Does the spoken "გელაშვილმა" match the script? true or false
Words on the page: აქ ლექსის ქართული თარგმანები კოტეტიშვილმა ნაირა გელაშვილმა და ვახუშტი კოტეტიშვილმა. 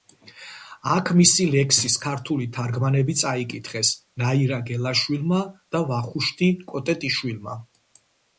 true